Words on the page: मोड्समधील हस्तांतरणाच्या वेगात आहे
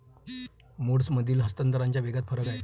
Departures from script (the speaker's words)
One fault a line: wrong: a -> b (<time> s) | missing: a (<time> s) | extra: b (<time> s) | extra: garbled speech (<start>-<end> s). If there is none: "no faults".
extra: फरक (2.2 s)